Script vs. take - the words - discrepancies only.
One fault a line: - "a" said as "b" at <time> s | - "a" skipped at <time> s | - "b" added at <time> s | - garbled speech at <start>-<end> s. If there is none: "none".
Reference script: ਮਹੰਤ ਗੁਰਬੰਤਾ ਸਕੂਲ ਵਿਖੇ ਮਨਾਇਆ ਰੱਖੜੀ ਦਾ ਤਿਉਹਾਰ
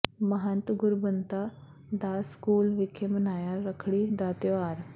- "ਦਾਸ" added at 1.9 s